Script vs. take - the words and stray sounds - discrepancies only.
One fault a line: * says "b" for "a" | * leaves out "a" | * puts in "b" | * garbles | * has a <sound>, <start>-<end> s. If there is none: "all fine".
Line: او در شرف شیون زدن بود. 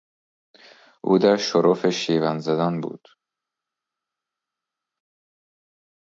all fine